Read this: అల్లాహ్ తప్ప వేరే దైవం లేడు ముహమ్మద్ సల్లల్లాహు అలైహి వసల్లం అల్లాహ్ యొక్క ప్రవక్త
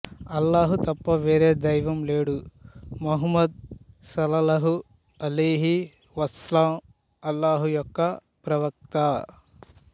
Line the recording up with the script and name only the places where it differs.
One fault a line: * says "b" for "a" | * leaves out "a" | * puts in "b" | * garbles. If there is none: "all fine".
all fine